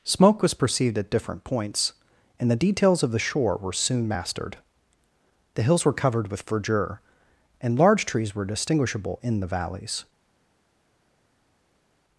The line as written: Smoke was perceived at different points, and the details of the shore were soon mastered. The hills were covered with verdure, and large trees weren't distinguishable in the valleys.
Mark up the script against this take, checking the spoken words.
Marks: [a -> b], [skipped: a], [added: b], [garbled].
Smoke was perceived at different points, and the details of the shore were soon mastered. The hills were covered with verdure, and large trees [weren't -> were] distinguishable in the valleys.